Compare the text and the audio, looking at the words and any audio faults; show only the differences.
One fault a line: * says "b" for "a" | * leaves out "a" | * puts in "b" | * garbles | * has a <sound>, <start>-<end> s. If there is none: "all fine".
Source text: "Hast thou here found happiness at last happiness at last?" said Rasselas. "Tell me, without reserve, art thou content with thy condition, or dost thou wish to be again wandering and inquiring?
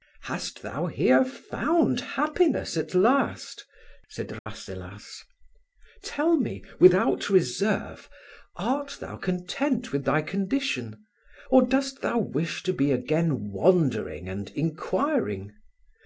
* leaves out "happiness at last"
* has a dropout, 4.4-4.5 s